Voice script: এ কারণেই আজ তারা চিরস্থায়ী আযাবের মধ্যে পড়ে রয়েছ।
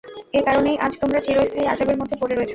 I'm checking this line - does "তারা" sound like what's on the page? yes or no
no